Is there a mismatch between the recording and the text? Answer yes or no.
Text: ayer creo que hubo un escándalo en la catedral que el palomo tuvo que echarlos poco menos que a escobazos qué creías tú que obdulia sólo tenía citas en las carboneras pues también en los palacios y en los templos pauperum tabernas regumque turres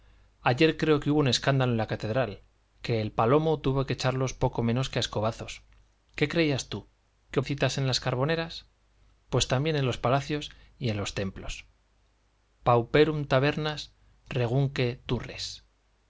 yes